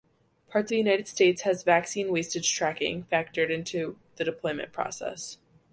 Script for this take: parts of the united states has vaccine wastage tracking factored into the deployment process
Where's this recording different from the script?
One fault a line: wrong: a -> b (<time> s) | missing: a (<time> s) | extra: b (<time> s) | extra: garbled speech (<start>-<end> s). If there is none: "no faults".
missing: of (0.7 s)